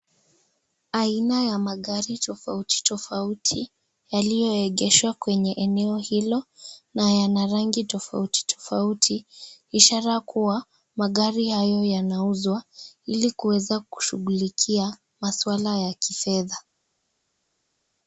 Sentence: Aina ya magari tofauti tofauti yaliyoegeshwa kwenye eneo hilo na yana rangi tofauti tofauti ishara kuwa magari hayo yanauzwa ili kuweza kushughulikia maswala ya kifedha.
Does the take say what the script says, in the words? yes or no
yes